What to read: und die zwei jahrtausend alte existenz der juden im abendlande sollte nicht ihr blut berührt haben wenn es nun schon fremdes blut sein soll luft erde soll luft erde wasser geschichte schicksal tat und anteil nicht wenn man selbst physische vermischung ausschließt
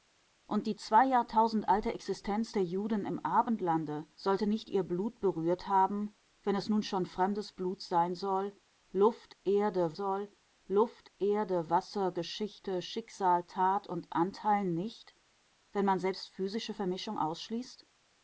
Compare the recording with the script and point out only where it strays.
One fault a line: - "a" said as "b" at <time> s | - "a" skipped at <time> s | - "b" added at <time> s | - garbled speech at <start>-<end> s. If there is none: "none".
none